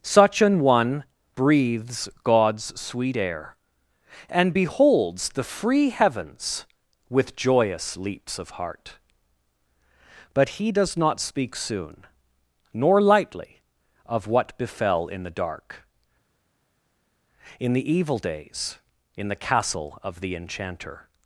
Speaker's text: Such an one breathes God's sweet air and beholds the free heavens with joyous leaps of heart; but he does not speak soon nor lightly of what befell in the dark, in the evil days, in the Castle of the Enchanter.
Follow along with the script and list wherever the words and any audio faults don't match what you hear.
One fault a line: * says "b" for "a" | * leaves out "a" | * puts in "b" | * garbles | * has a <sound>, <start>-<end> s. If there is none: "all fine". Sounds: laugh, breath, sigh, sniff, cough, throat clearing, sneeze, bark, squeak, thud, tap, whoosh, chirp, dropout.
all fine